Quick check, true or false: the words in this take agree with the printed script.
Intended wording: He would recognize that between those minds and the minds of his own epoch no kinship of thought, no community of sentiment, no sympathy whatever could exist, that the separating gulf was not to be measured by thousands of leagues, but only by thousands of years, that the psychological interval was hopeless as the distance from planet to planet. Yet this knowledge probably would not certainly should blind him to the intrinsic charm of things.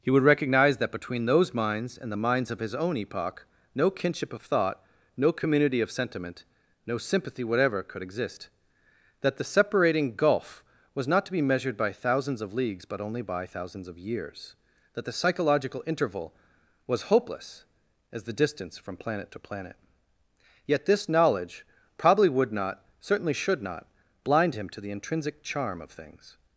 false